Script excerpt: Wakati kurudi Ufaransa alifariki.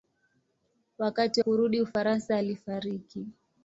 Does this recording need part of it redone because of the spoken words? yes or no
no